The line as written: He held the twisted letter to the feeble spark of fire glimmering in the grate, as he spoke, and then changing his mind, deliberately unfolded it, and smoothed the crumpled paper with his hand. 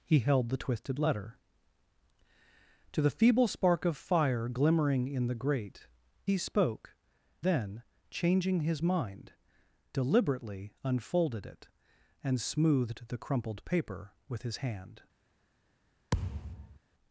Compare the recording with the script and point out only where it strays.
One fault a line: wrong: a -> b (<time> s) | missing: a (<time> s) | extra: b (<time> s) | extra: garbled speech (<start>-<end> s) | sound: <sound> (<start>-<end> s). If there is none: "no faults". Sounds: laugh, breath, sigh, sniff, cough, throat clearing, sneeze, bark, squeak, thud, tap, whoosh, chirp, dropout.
missing: as (5.9 s)
missing: and (6.9 s)
sound: thud (16.1-16.8 s)